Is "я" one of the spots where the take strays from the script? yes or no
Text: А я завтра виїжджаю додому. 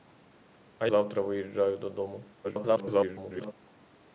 yes